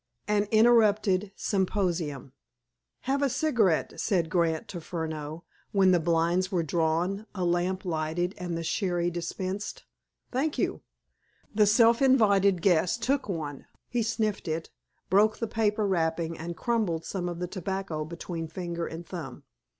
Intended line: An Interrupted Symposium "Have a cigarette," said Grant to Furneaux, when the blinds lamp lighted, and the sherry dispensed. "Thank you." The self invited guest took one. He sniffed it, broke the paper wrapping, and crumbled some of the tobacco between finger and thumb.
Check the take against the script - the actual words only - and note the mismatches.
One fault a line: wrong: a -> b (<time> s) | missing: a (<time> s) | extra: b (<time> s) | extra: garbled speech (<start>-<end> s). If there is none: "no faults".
extra: were drawn a (6.5 s)